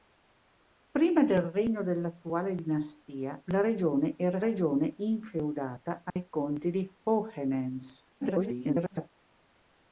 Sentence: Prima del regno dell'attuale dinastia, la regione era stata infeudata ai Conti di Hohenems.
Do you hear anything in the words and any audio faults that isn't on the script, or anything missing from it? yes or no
yes